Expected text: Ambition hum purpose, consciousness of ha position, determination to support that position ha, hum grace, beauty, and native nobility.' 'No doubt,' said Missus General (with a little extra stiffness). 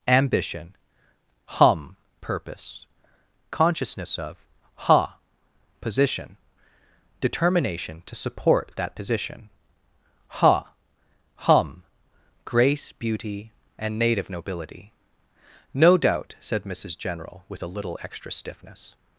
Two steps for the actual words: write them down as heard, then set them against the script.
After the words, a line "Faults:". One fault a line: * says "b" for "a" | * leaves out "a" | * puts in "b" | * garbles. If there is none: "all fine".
Ambition hum purpose, consciousness of ha position, determination to support that position ha, hum grace, beauty, and native nobility.' 'No doubt,' said Missus General (with a little extra stiffness).
Faults:
all fine